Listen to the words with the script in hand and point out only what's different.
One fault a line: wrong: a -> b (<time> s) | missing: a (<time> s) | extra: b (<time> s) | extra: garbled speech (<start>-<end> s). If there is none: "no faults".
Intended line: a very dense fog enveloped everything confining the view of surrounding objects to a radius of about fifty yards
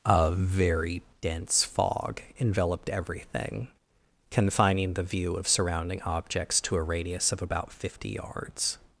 no faults